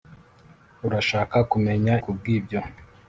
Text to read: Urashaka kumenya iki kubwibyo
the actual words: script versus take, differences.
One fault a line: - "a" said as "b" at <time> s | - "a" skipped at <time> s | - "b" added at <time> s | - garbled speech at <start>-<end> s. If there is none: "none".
- "iki" skipped at 1.9 s